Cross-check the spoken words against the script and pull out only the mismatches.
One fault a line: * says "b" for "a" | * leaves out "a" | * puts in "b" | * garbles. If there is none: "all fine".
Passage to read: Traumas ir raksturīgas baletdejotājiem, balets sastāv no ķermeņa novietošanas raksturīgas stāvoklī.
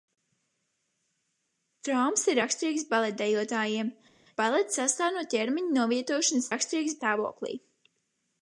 all fine